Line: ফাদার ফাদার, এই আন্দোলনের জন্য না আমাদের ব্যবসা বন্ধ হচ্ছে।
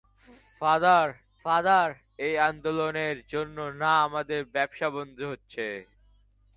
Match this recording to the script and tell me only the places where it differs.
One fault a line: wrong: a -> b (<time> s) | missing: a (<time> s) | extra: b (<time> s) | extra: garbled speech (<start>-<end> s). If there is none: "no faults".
no faults